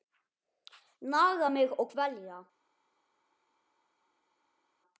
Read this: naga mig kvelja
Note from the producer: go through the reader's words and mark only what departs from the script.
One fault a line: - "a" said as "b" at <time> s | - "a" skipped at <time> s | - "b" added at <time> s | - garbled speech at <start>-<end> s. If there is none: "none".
- "og" added at 1.8 s